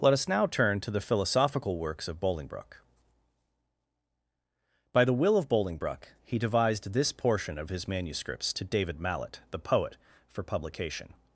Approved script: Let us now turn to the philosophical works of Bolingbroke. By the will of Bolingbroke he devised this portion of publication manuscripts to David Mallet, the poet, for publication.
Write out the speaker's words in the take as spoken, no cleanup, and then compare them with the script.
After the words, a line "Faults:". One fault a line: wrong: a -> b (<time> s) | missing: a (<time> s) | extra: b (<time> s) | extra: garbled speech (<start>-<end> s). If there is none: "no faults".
Let us now turn to the philosophical works of Bolingbroke. By the will of Bolingbroke he devised this portion of his manuscripts to David Mallet, the poet, for publication.
Faults:
wrong: publication -> his (7.7 s)